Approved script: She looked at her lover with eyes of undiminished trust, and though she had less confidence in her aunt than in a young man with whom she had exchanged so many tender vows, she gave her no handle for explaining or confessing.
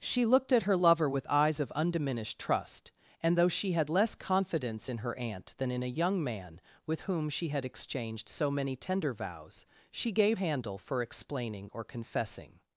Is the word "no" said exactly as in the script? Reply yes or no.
no